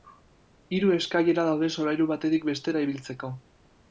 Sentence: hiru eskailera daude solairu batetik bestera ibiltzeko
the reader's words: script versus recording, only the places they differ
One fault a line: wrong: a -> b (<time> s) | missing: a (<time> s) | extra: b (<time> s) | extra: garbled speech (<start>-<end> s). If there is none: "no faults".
no faults